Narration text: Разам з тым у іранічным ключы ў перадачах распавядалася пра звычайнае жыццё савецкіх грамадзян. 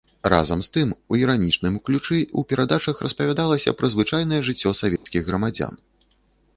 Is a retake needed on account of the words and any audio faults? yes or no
yes